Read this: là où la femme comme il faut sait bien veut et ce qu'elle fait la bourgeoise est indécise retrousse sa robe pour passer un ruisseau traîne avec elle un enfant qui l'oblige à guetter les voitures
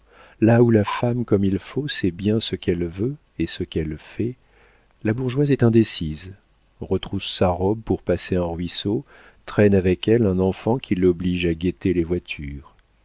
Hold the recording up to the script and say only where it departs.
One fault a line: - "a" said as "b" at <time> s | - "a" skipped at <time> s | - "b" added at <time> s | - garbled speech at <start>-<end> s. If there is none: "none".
- "ce qu'elle" added at 2.4 s